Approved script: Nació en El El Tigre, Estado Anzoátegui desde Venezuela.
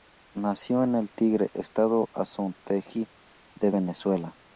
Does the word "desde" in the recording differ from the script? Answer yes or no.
yes